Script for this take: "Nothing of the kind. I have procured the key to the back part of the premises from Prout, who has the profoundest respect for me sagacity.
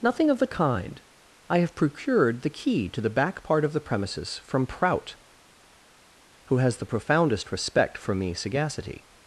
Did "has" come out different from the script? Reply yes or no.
no